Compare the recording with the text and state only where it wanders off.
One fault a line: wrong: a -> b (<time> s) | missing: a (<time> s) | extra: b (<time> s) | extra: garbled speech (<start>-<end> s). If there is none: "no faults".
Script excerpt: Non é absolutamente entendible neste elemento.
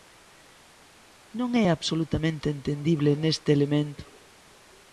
no faults